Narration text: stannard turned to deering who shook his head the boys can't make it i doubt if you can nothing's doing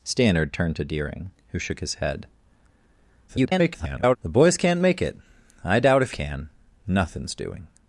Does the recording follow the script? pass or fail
fail